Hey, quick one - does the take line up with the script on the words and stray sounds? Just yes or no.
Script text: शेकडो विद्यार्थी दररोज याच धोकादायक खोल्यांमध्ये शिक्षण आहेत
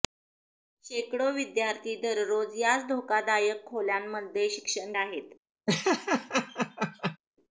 no